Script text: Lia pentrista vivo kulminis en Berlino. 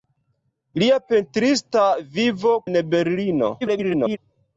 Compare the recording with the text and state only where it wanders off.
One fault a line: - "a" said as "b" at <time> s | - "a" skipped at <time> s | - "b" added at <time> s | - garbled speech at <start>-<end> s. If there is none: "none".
- "kulminis" skipped at 2.5 s
- garbled speech at 3.6-4.2 s